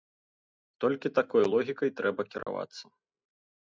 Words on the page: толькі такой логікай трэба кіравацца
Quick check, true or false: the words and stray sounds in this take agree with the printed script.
false